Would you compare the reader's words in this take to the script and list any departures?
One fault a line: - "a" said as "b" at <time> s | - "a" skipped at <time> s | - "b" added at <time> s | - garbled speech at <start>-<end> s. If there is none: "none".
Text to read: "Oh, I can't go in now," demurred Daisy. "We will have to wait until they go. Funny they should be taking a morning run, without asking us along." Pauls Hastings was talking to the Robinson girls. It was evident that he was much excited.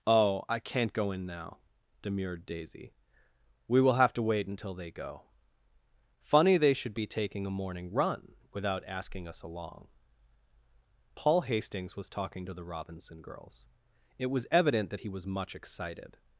- "Pauls" said as "Paul" at 11.2 s